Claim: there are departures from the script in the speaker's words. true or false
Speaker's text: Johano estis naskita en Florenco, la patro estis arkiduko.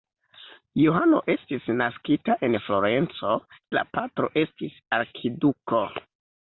false